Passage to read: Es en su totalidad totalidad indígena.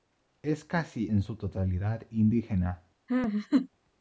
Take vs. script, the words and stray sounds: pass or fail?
fail